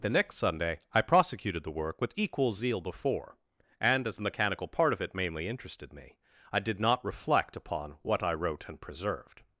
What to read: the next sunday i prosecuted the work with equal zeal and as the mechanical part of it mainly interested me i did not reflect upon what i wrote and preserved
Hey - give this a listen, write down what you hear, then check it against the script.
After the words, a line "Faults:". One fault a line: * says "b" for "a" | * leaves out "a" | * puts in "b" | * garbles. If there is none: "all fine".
the next sunday i prosecuted the work with equal zeal before and as the mechanical part of it mainly interested me i did not reflect upon what i wrote and preserved
Faults:
* puts in "before"